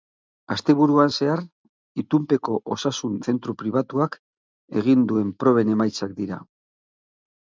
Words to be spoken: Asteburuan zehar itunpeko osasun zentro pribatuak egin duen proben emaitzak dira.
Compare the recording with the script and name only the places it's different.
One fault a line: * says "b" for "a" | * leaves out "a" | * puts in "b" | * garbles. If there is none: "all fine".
all fine